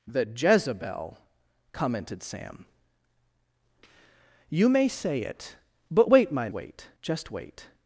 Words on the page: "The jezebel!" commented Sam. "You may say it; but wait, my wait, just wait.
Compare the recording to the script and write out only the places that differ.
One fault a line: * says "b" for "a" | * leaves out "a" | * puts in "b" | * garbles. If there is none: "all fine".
all fine